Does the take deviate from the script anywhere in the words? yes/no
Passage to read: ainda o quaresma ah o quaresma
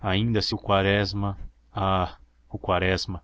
yes